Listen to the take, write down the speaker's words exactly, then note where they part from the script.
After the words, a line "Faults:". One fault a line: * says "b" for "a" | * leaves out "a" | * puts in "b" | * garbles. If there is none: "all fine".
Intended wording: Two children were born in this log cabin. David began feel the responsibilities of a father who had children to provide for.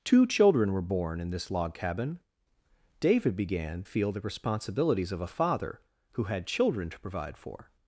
Two children were born in this log cabin. David began feel the responsibilities of a father who had children to provide for.
Faults:
all fine